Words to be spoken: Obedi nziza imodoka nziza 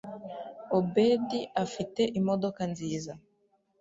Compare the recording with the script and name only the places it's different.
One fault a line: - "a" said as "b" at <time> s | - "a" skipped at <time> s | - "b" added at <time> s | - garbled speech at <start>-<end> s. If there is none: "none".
- "nziza" said as "afite" at 1.6 s